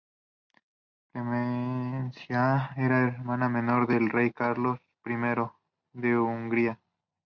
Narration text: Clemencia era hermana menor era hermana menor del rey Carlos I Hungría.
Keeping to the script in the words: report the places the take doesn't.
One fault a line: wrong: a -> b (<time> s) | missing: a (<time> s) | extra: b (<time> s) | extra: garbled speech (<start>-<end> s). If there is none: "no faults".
missing: era hermana menor (3.9 s)
extra: de (6.0 s)